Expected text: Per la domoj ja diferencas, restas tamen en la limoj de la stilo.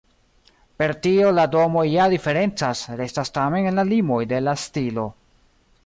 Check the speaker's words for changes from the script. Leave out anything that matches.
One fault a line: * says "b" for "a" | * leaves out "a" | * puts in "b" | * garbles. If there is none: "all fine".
* puts in "tio"